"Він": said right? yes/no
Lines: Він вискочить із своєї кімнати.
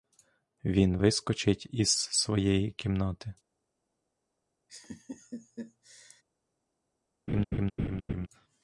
yes